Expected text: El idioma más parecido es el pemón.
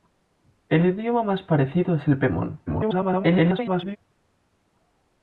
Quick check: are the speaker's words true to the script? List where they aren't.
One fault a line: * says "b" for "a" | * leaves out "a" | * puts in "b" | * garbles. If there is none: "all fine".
* garbles